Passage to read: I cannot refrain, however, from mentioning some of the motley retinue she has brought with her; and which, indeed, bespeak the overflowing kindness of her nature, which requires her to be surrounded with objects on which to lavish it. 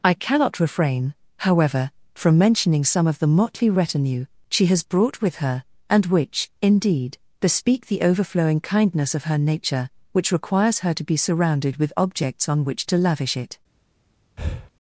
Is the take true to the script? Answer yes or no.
yes